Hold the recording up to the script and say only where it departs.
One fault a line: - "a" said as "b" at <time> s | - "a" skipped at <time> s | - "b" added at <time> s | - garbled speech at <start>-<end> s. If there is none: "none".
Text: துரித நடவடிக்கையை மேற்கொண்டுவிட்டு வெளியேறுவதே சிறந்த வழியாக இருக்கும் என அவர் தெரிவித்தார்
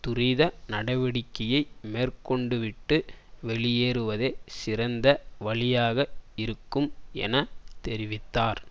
- "அவர்" skipped at 7.3 s